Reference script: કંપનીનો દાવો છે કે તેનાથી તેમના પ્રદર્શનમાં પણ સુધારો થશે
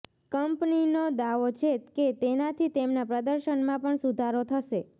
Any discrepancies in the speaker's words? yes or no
no